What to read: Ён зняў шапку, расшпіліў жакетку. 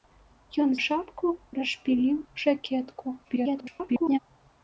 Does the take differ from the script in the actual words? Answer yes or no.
yes